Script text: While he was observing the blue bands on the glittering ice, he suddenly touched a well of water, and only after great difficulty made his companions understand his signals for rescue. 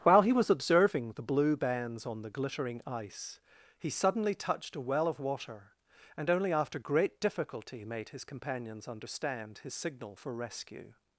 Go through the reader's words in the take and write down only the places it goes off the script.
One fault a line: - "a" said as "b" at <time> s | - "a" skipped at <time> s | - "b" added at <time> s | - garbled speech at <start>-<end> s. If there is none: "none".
- "signals" said as "signal" at 9.7 s